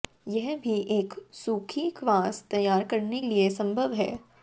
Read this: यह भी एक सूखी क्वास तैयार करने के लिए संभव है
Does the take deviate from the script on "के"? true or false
true